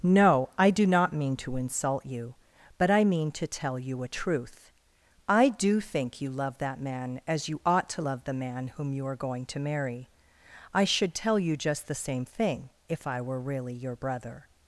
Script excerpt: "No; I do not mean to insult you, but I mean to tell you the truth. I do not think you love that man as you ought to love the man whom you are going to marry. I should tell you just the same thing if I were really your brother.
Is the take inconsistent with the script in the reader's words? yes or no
yes